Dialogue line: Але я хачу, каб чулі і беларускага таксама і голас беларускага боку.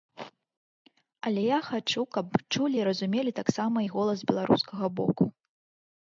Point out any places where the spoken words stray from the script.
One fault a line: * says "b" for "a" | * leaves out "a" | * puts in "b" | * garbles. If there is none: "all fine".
* says "разумелі" for "беларускага"